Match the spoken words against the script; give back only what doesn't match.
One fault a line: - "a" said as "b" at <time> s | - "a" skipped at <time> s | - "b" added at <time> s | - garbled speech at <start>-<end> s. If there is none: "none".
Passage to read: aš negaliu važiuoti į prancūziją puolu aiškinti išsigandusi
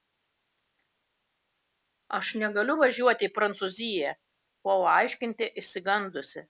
none